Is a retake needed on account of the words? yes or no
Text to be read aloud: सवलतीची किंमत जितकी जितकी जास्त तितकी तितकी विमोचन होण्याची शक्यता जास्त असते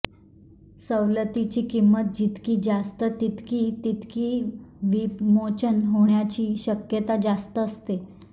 yes